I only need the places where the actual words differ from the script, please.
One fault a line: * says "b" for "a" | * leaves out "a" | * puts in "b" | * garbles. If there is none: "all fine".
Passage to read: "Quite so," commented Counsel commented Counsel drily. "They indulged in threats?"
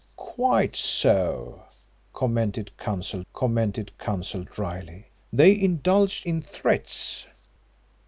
all fine